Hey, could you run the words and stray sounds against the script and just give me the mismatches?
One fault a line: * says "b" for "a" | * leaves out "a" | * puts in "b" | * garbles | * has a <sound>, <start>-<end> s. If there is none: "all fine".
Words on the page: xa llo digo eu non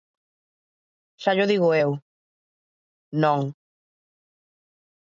all fine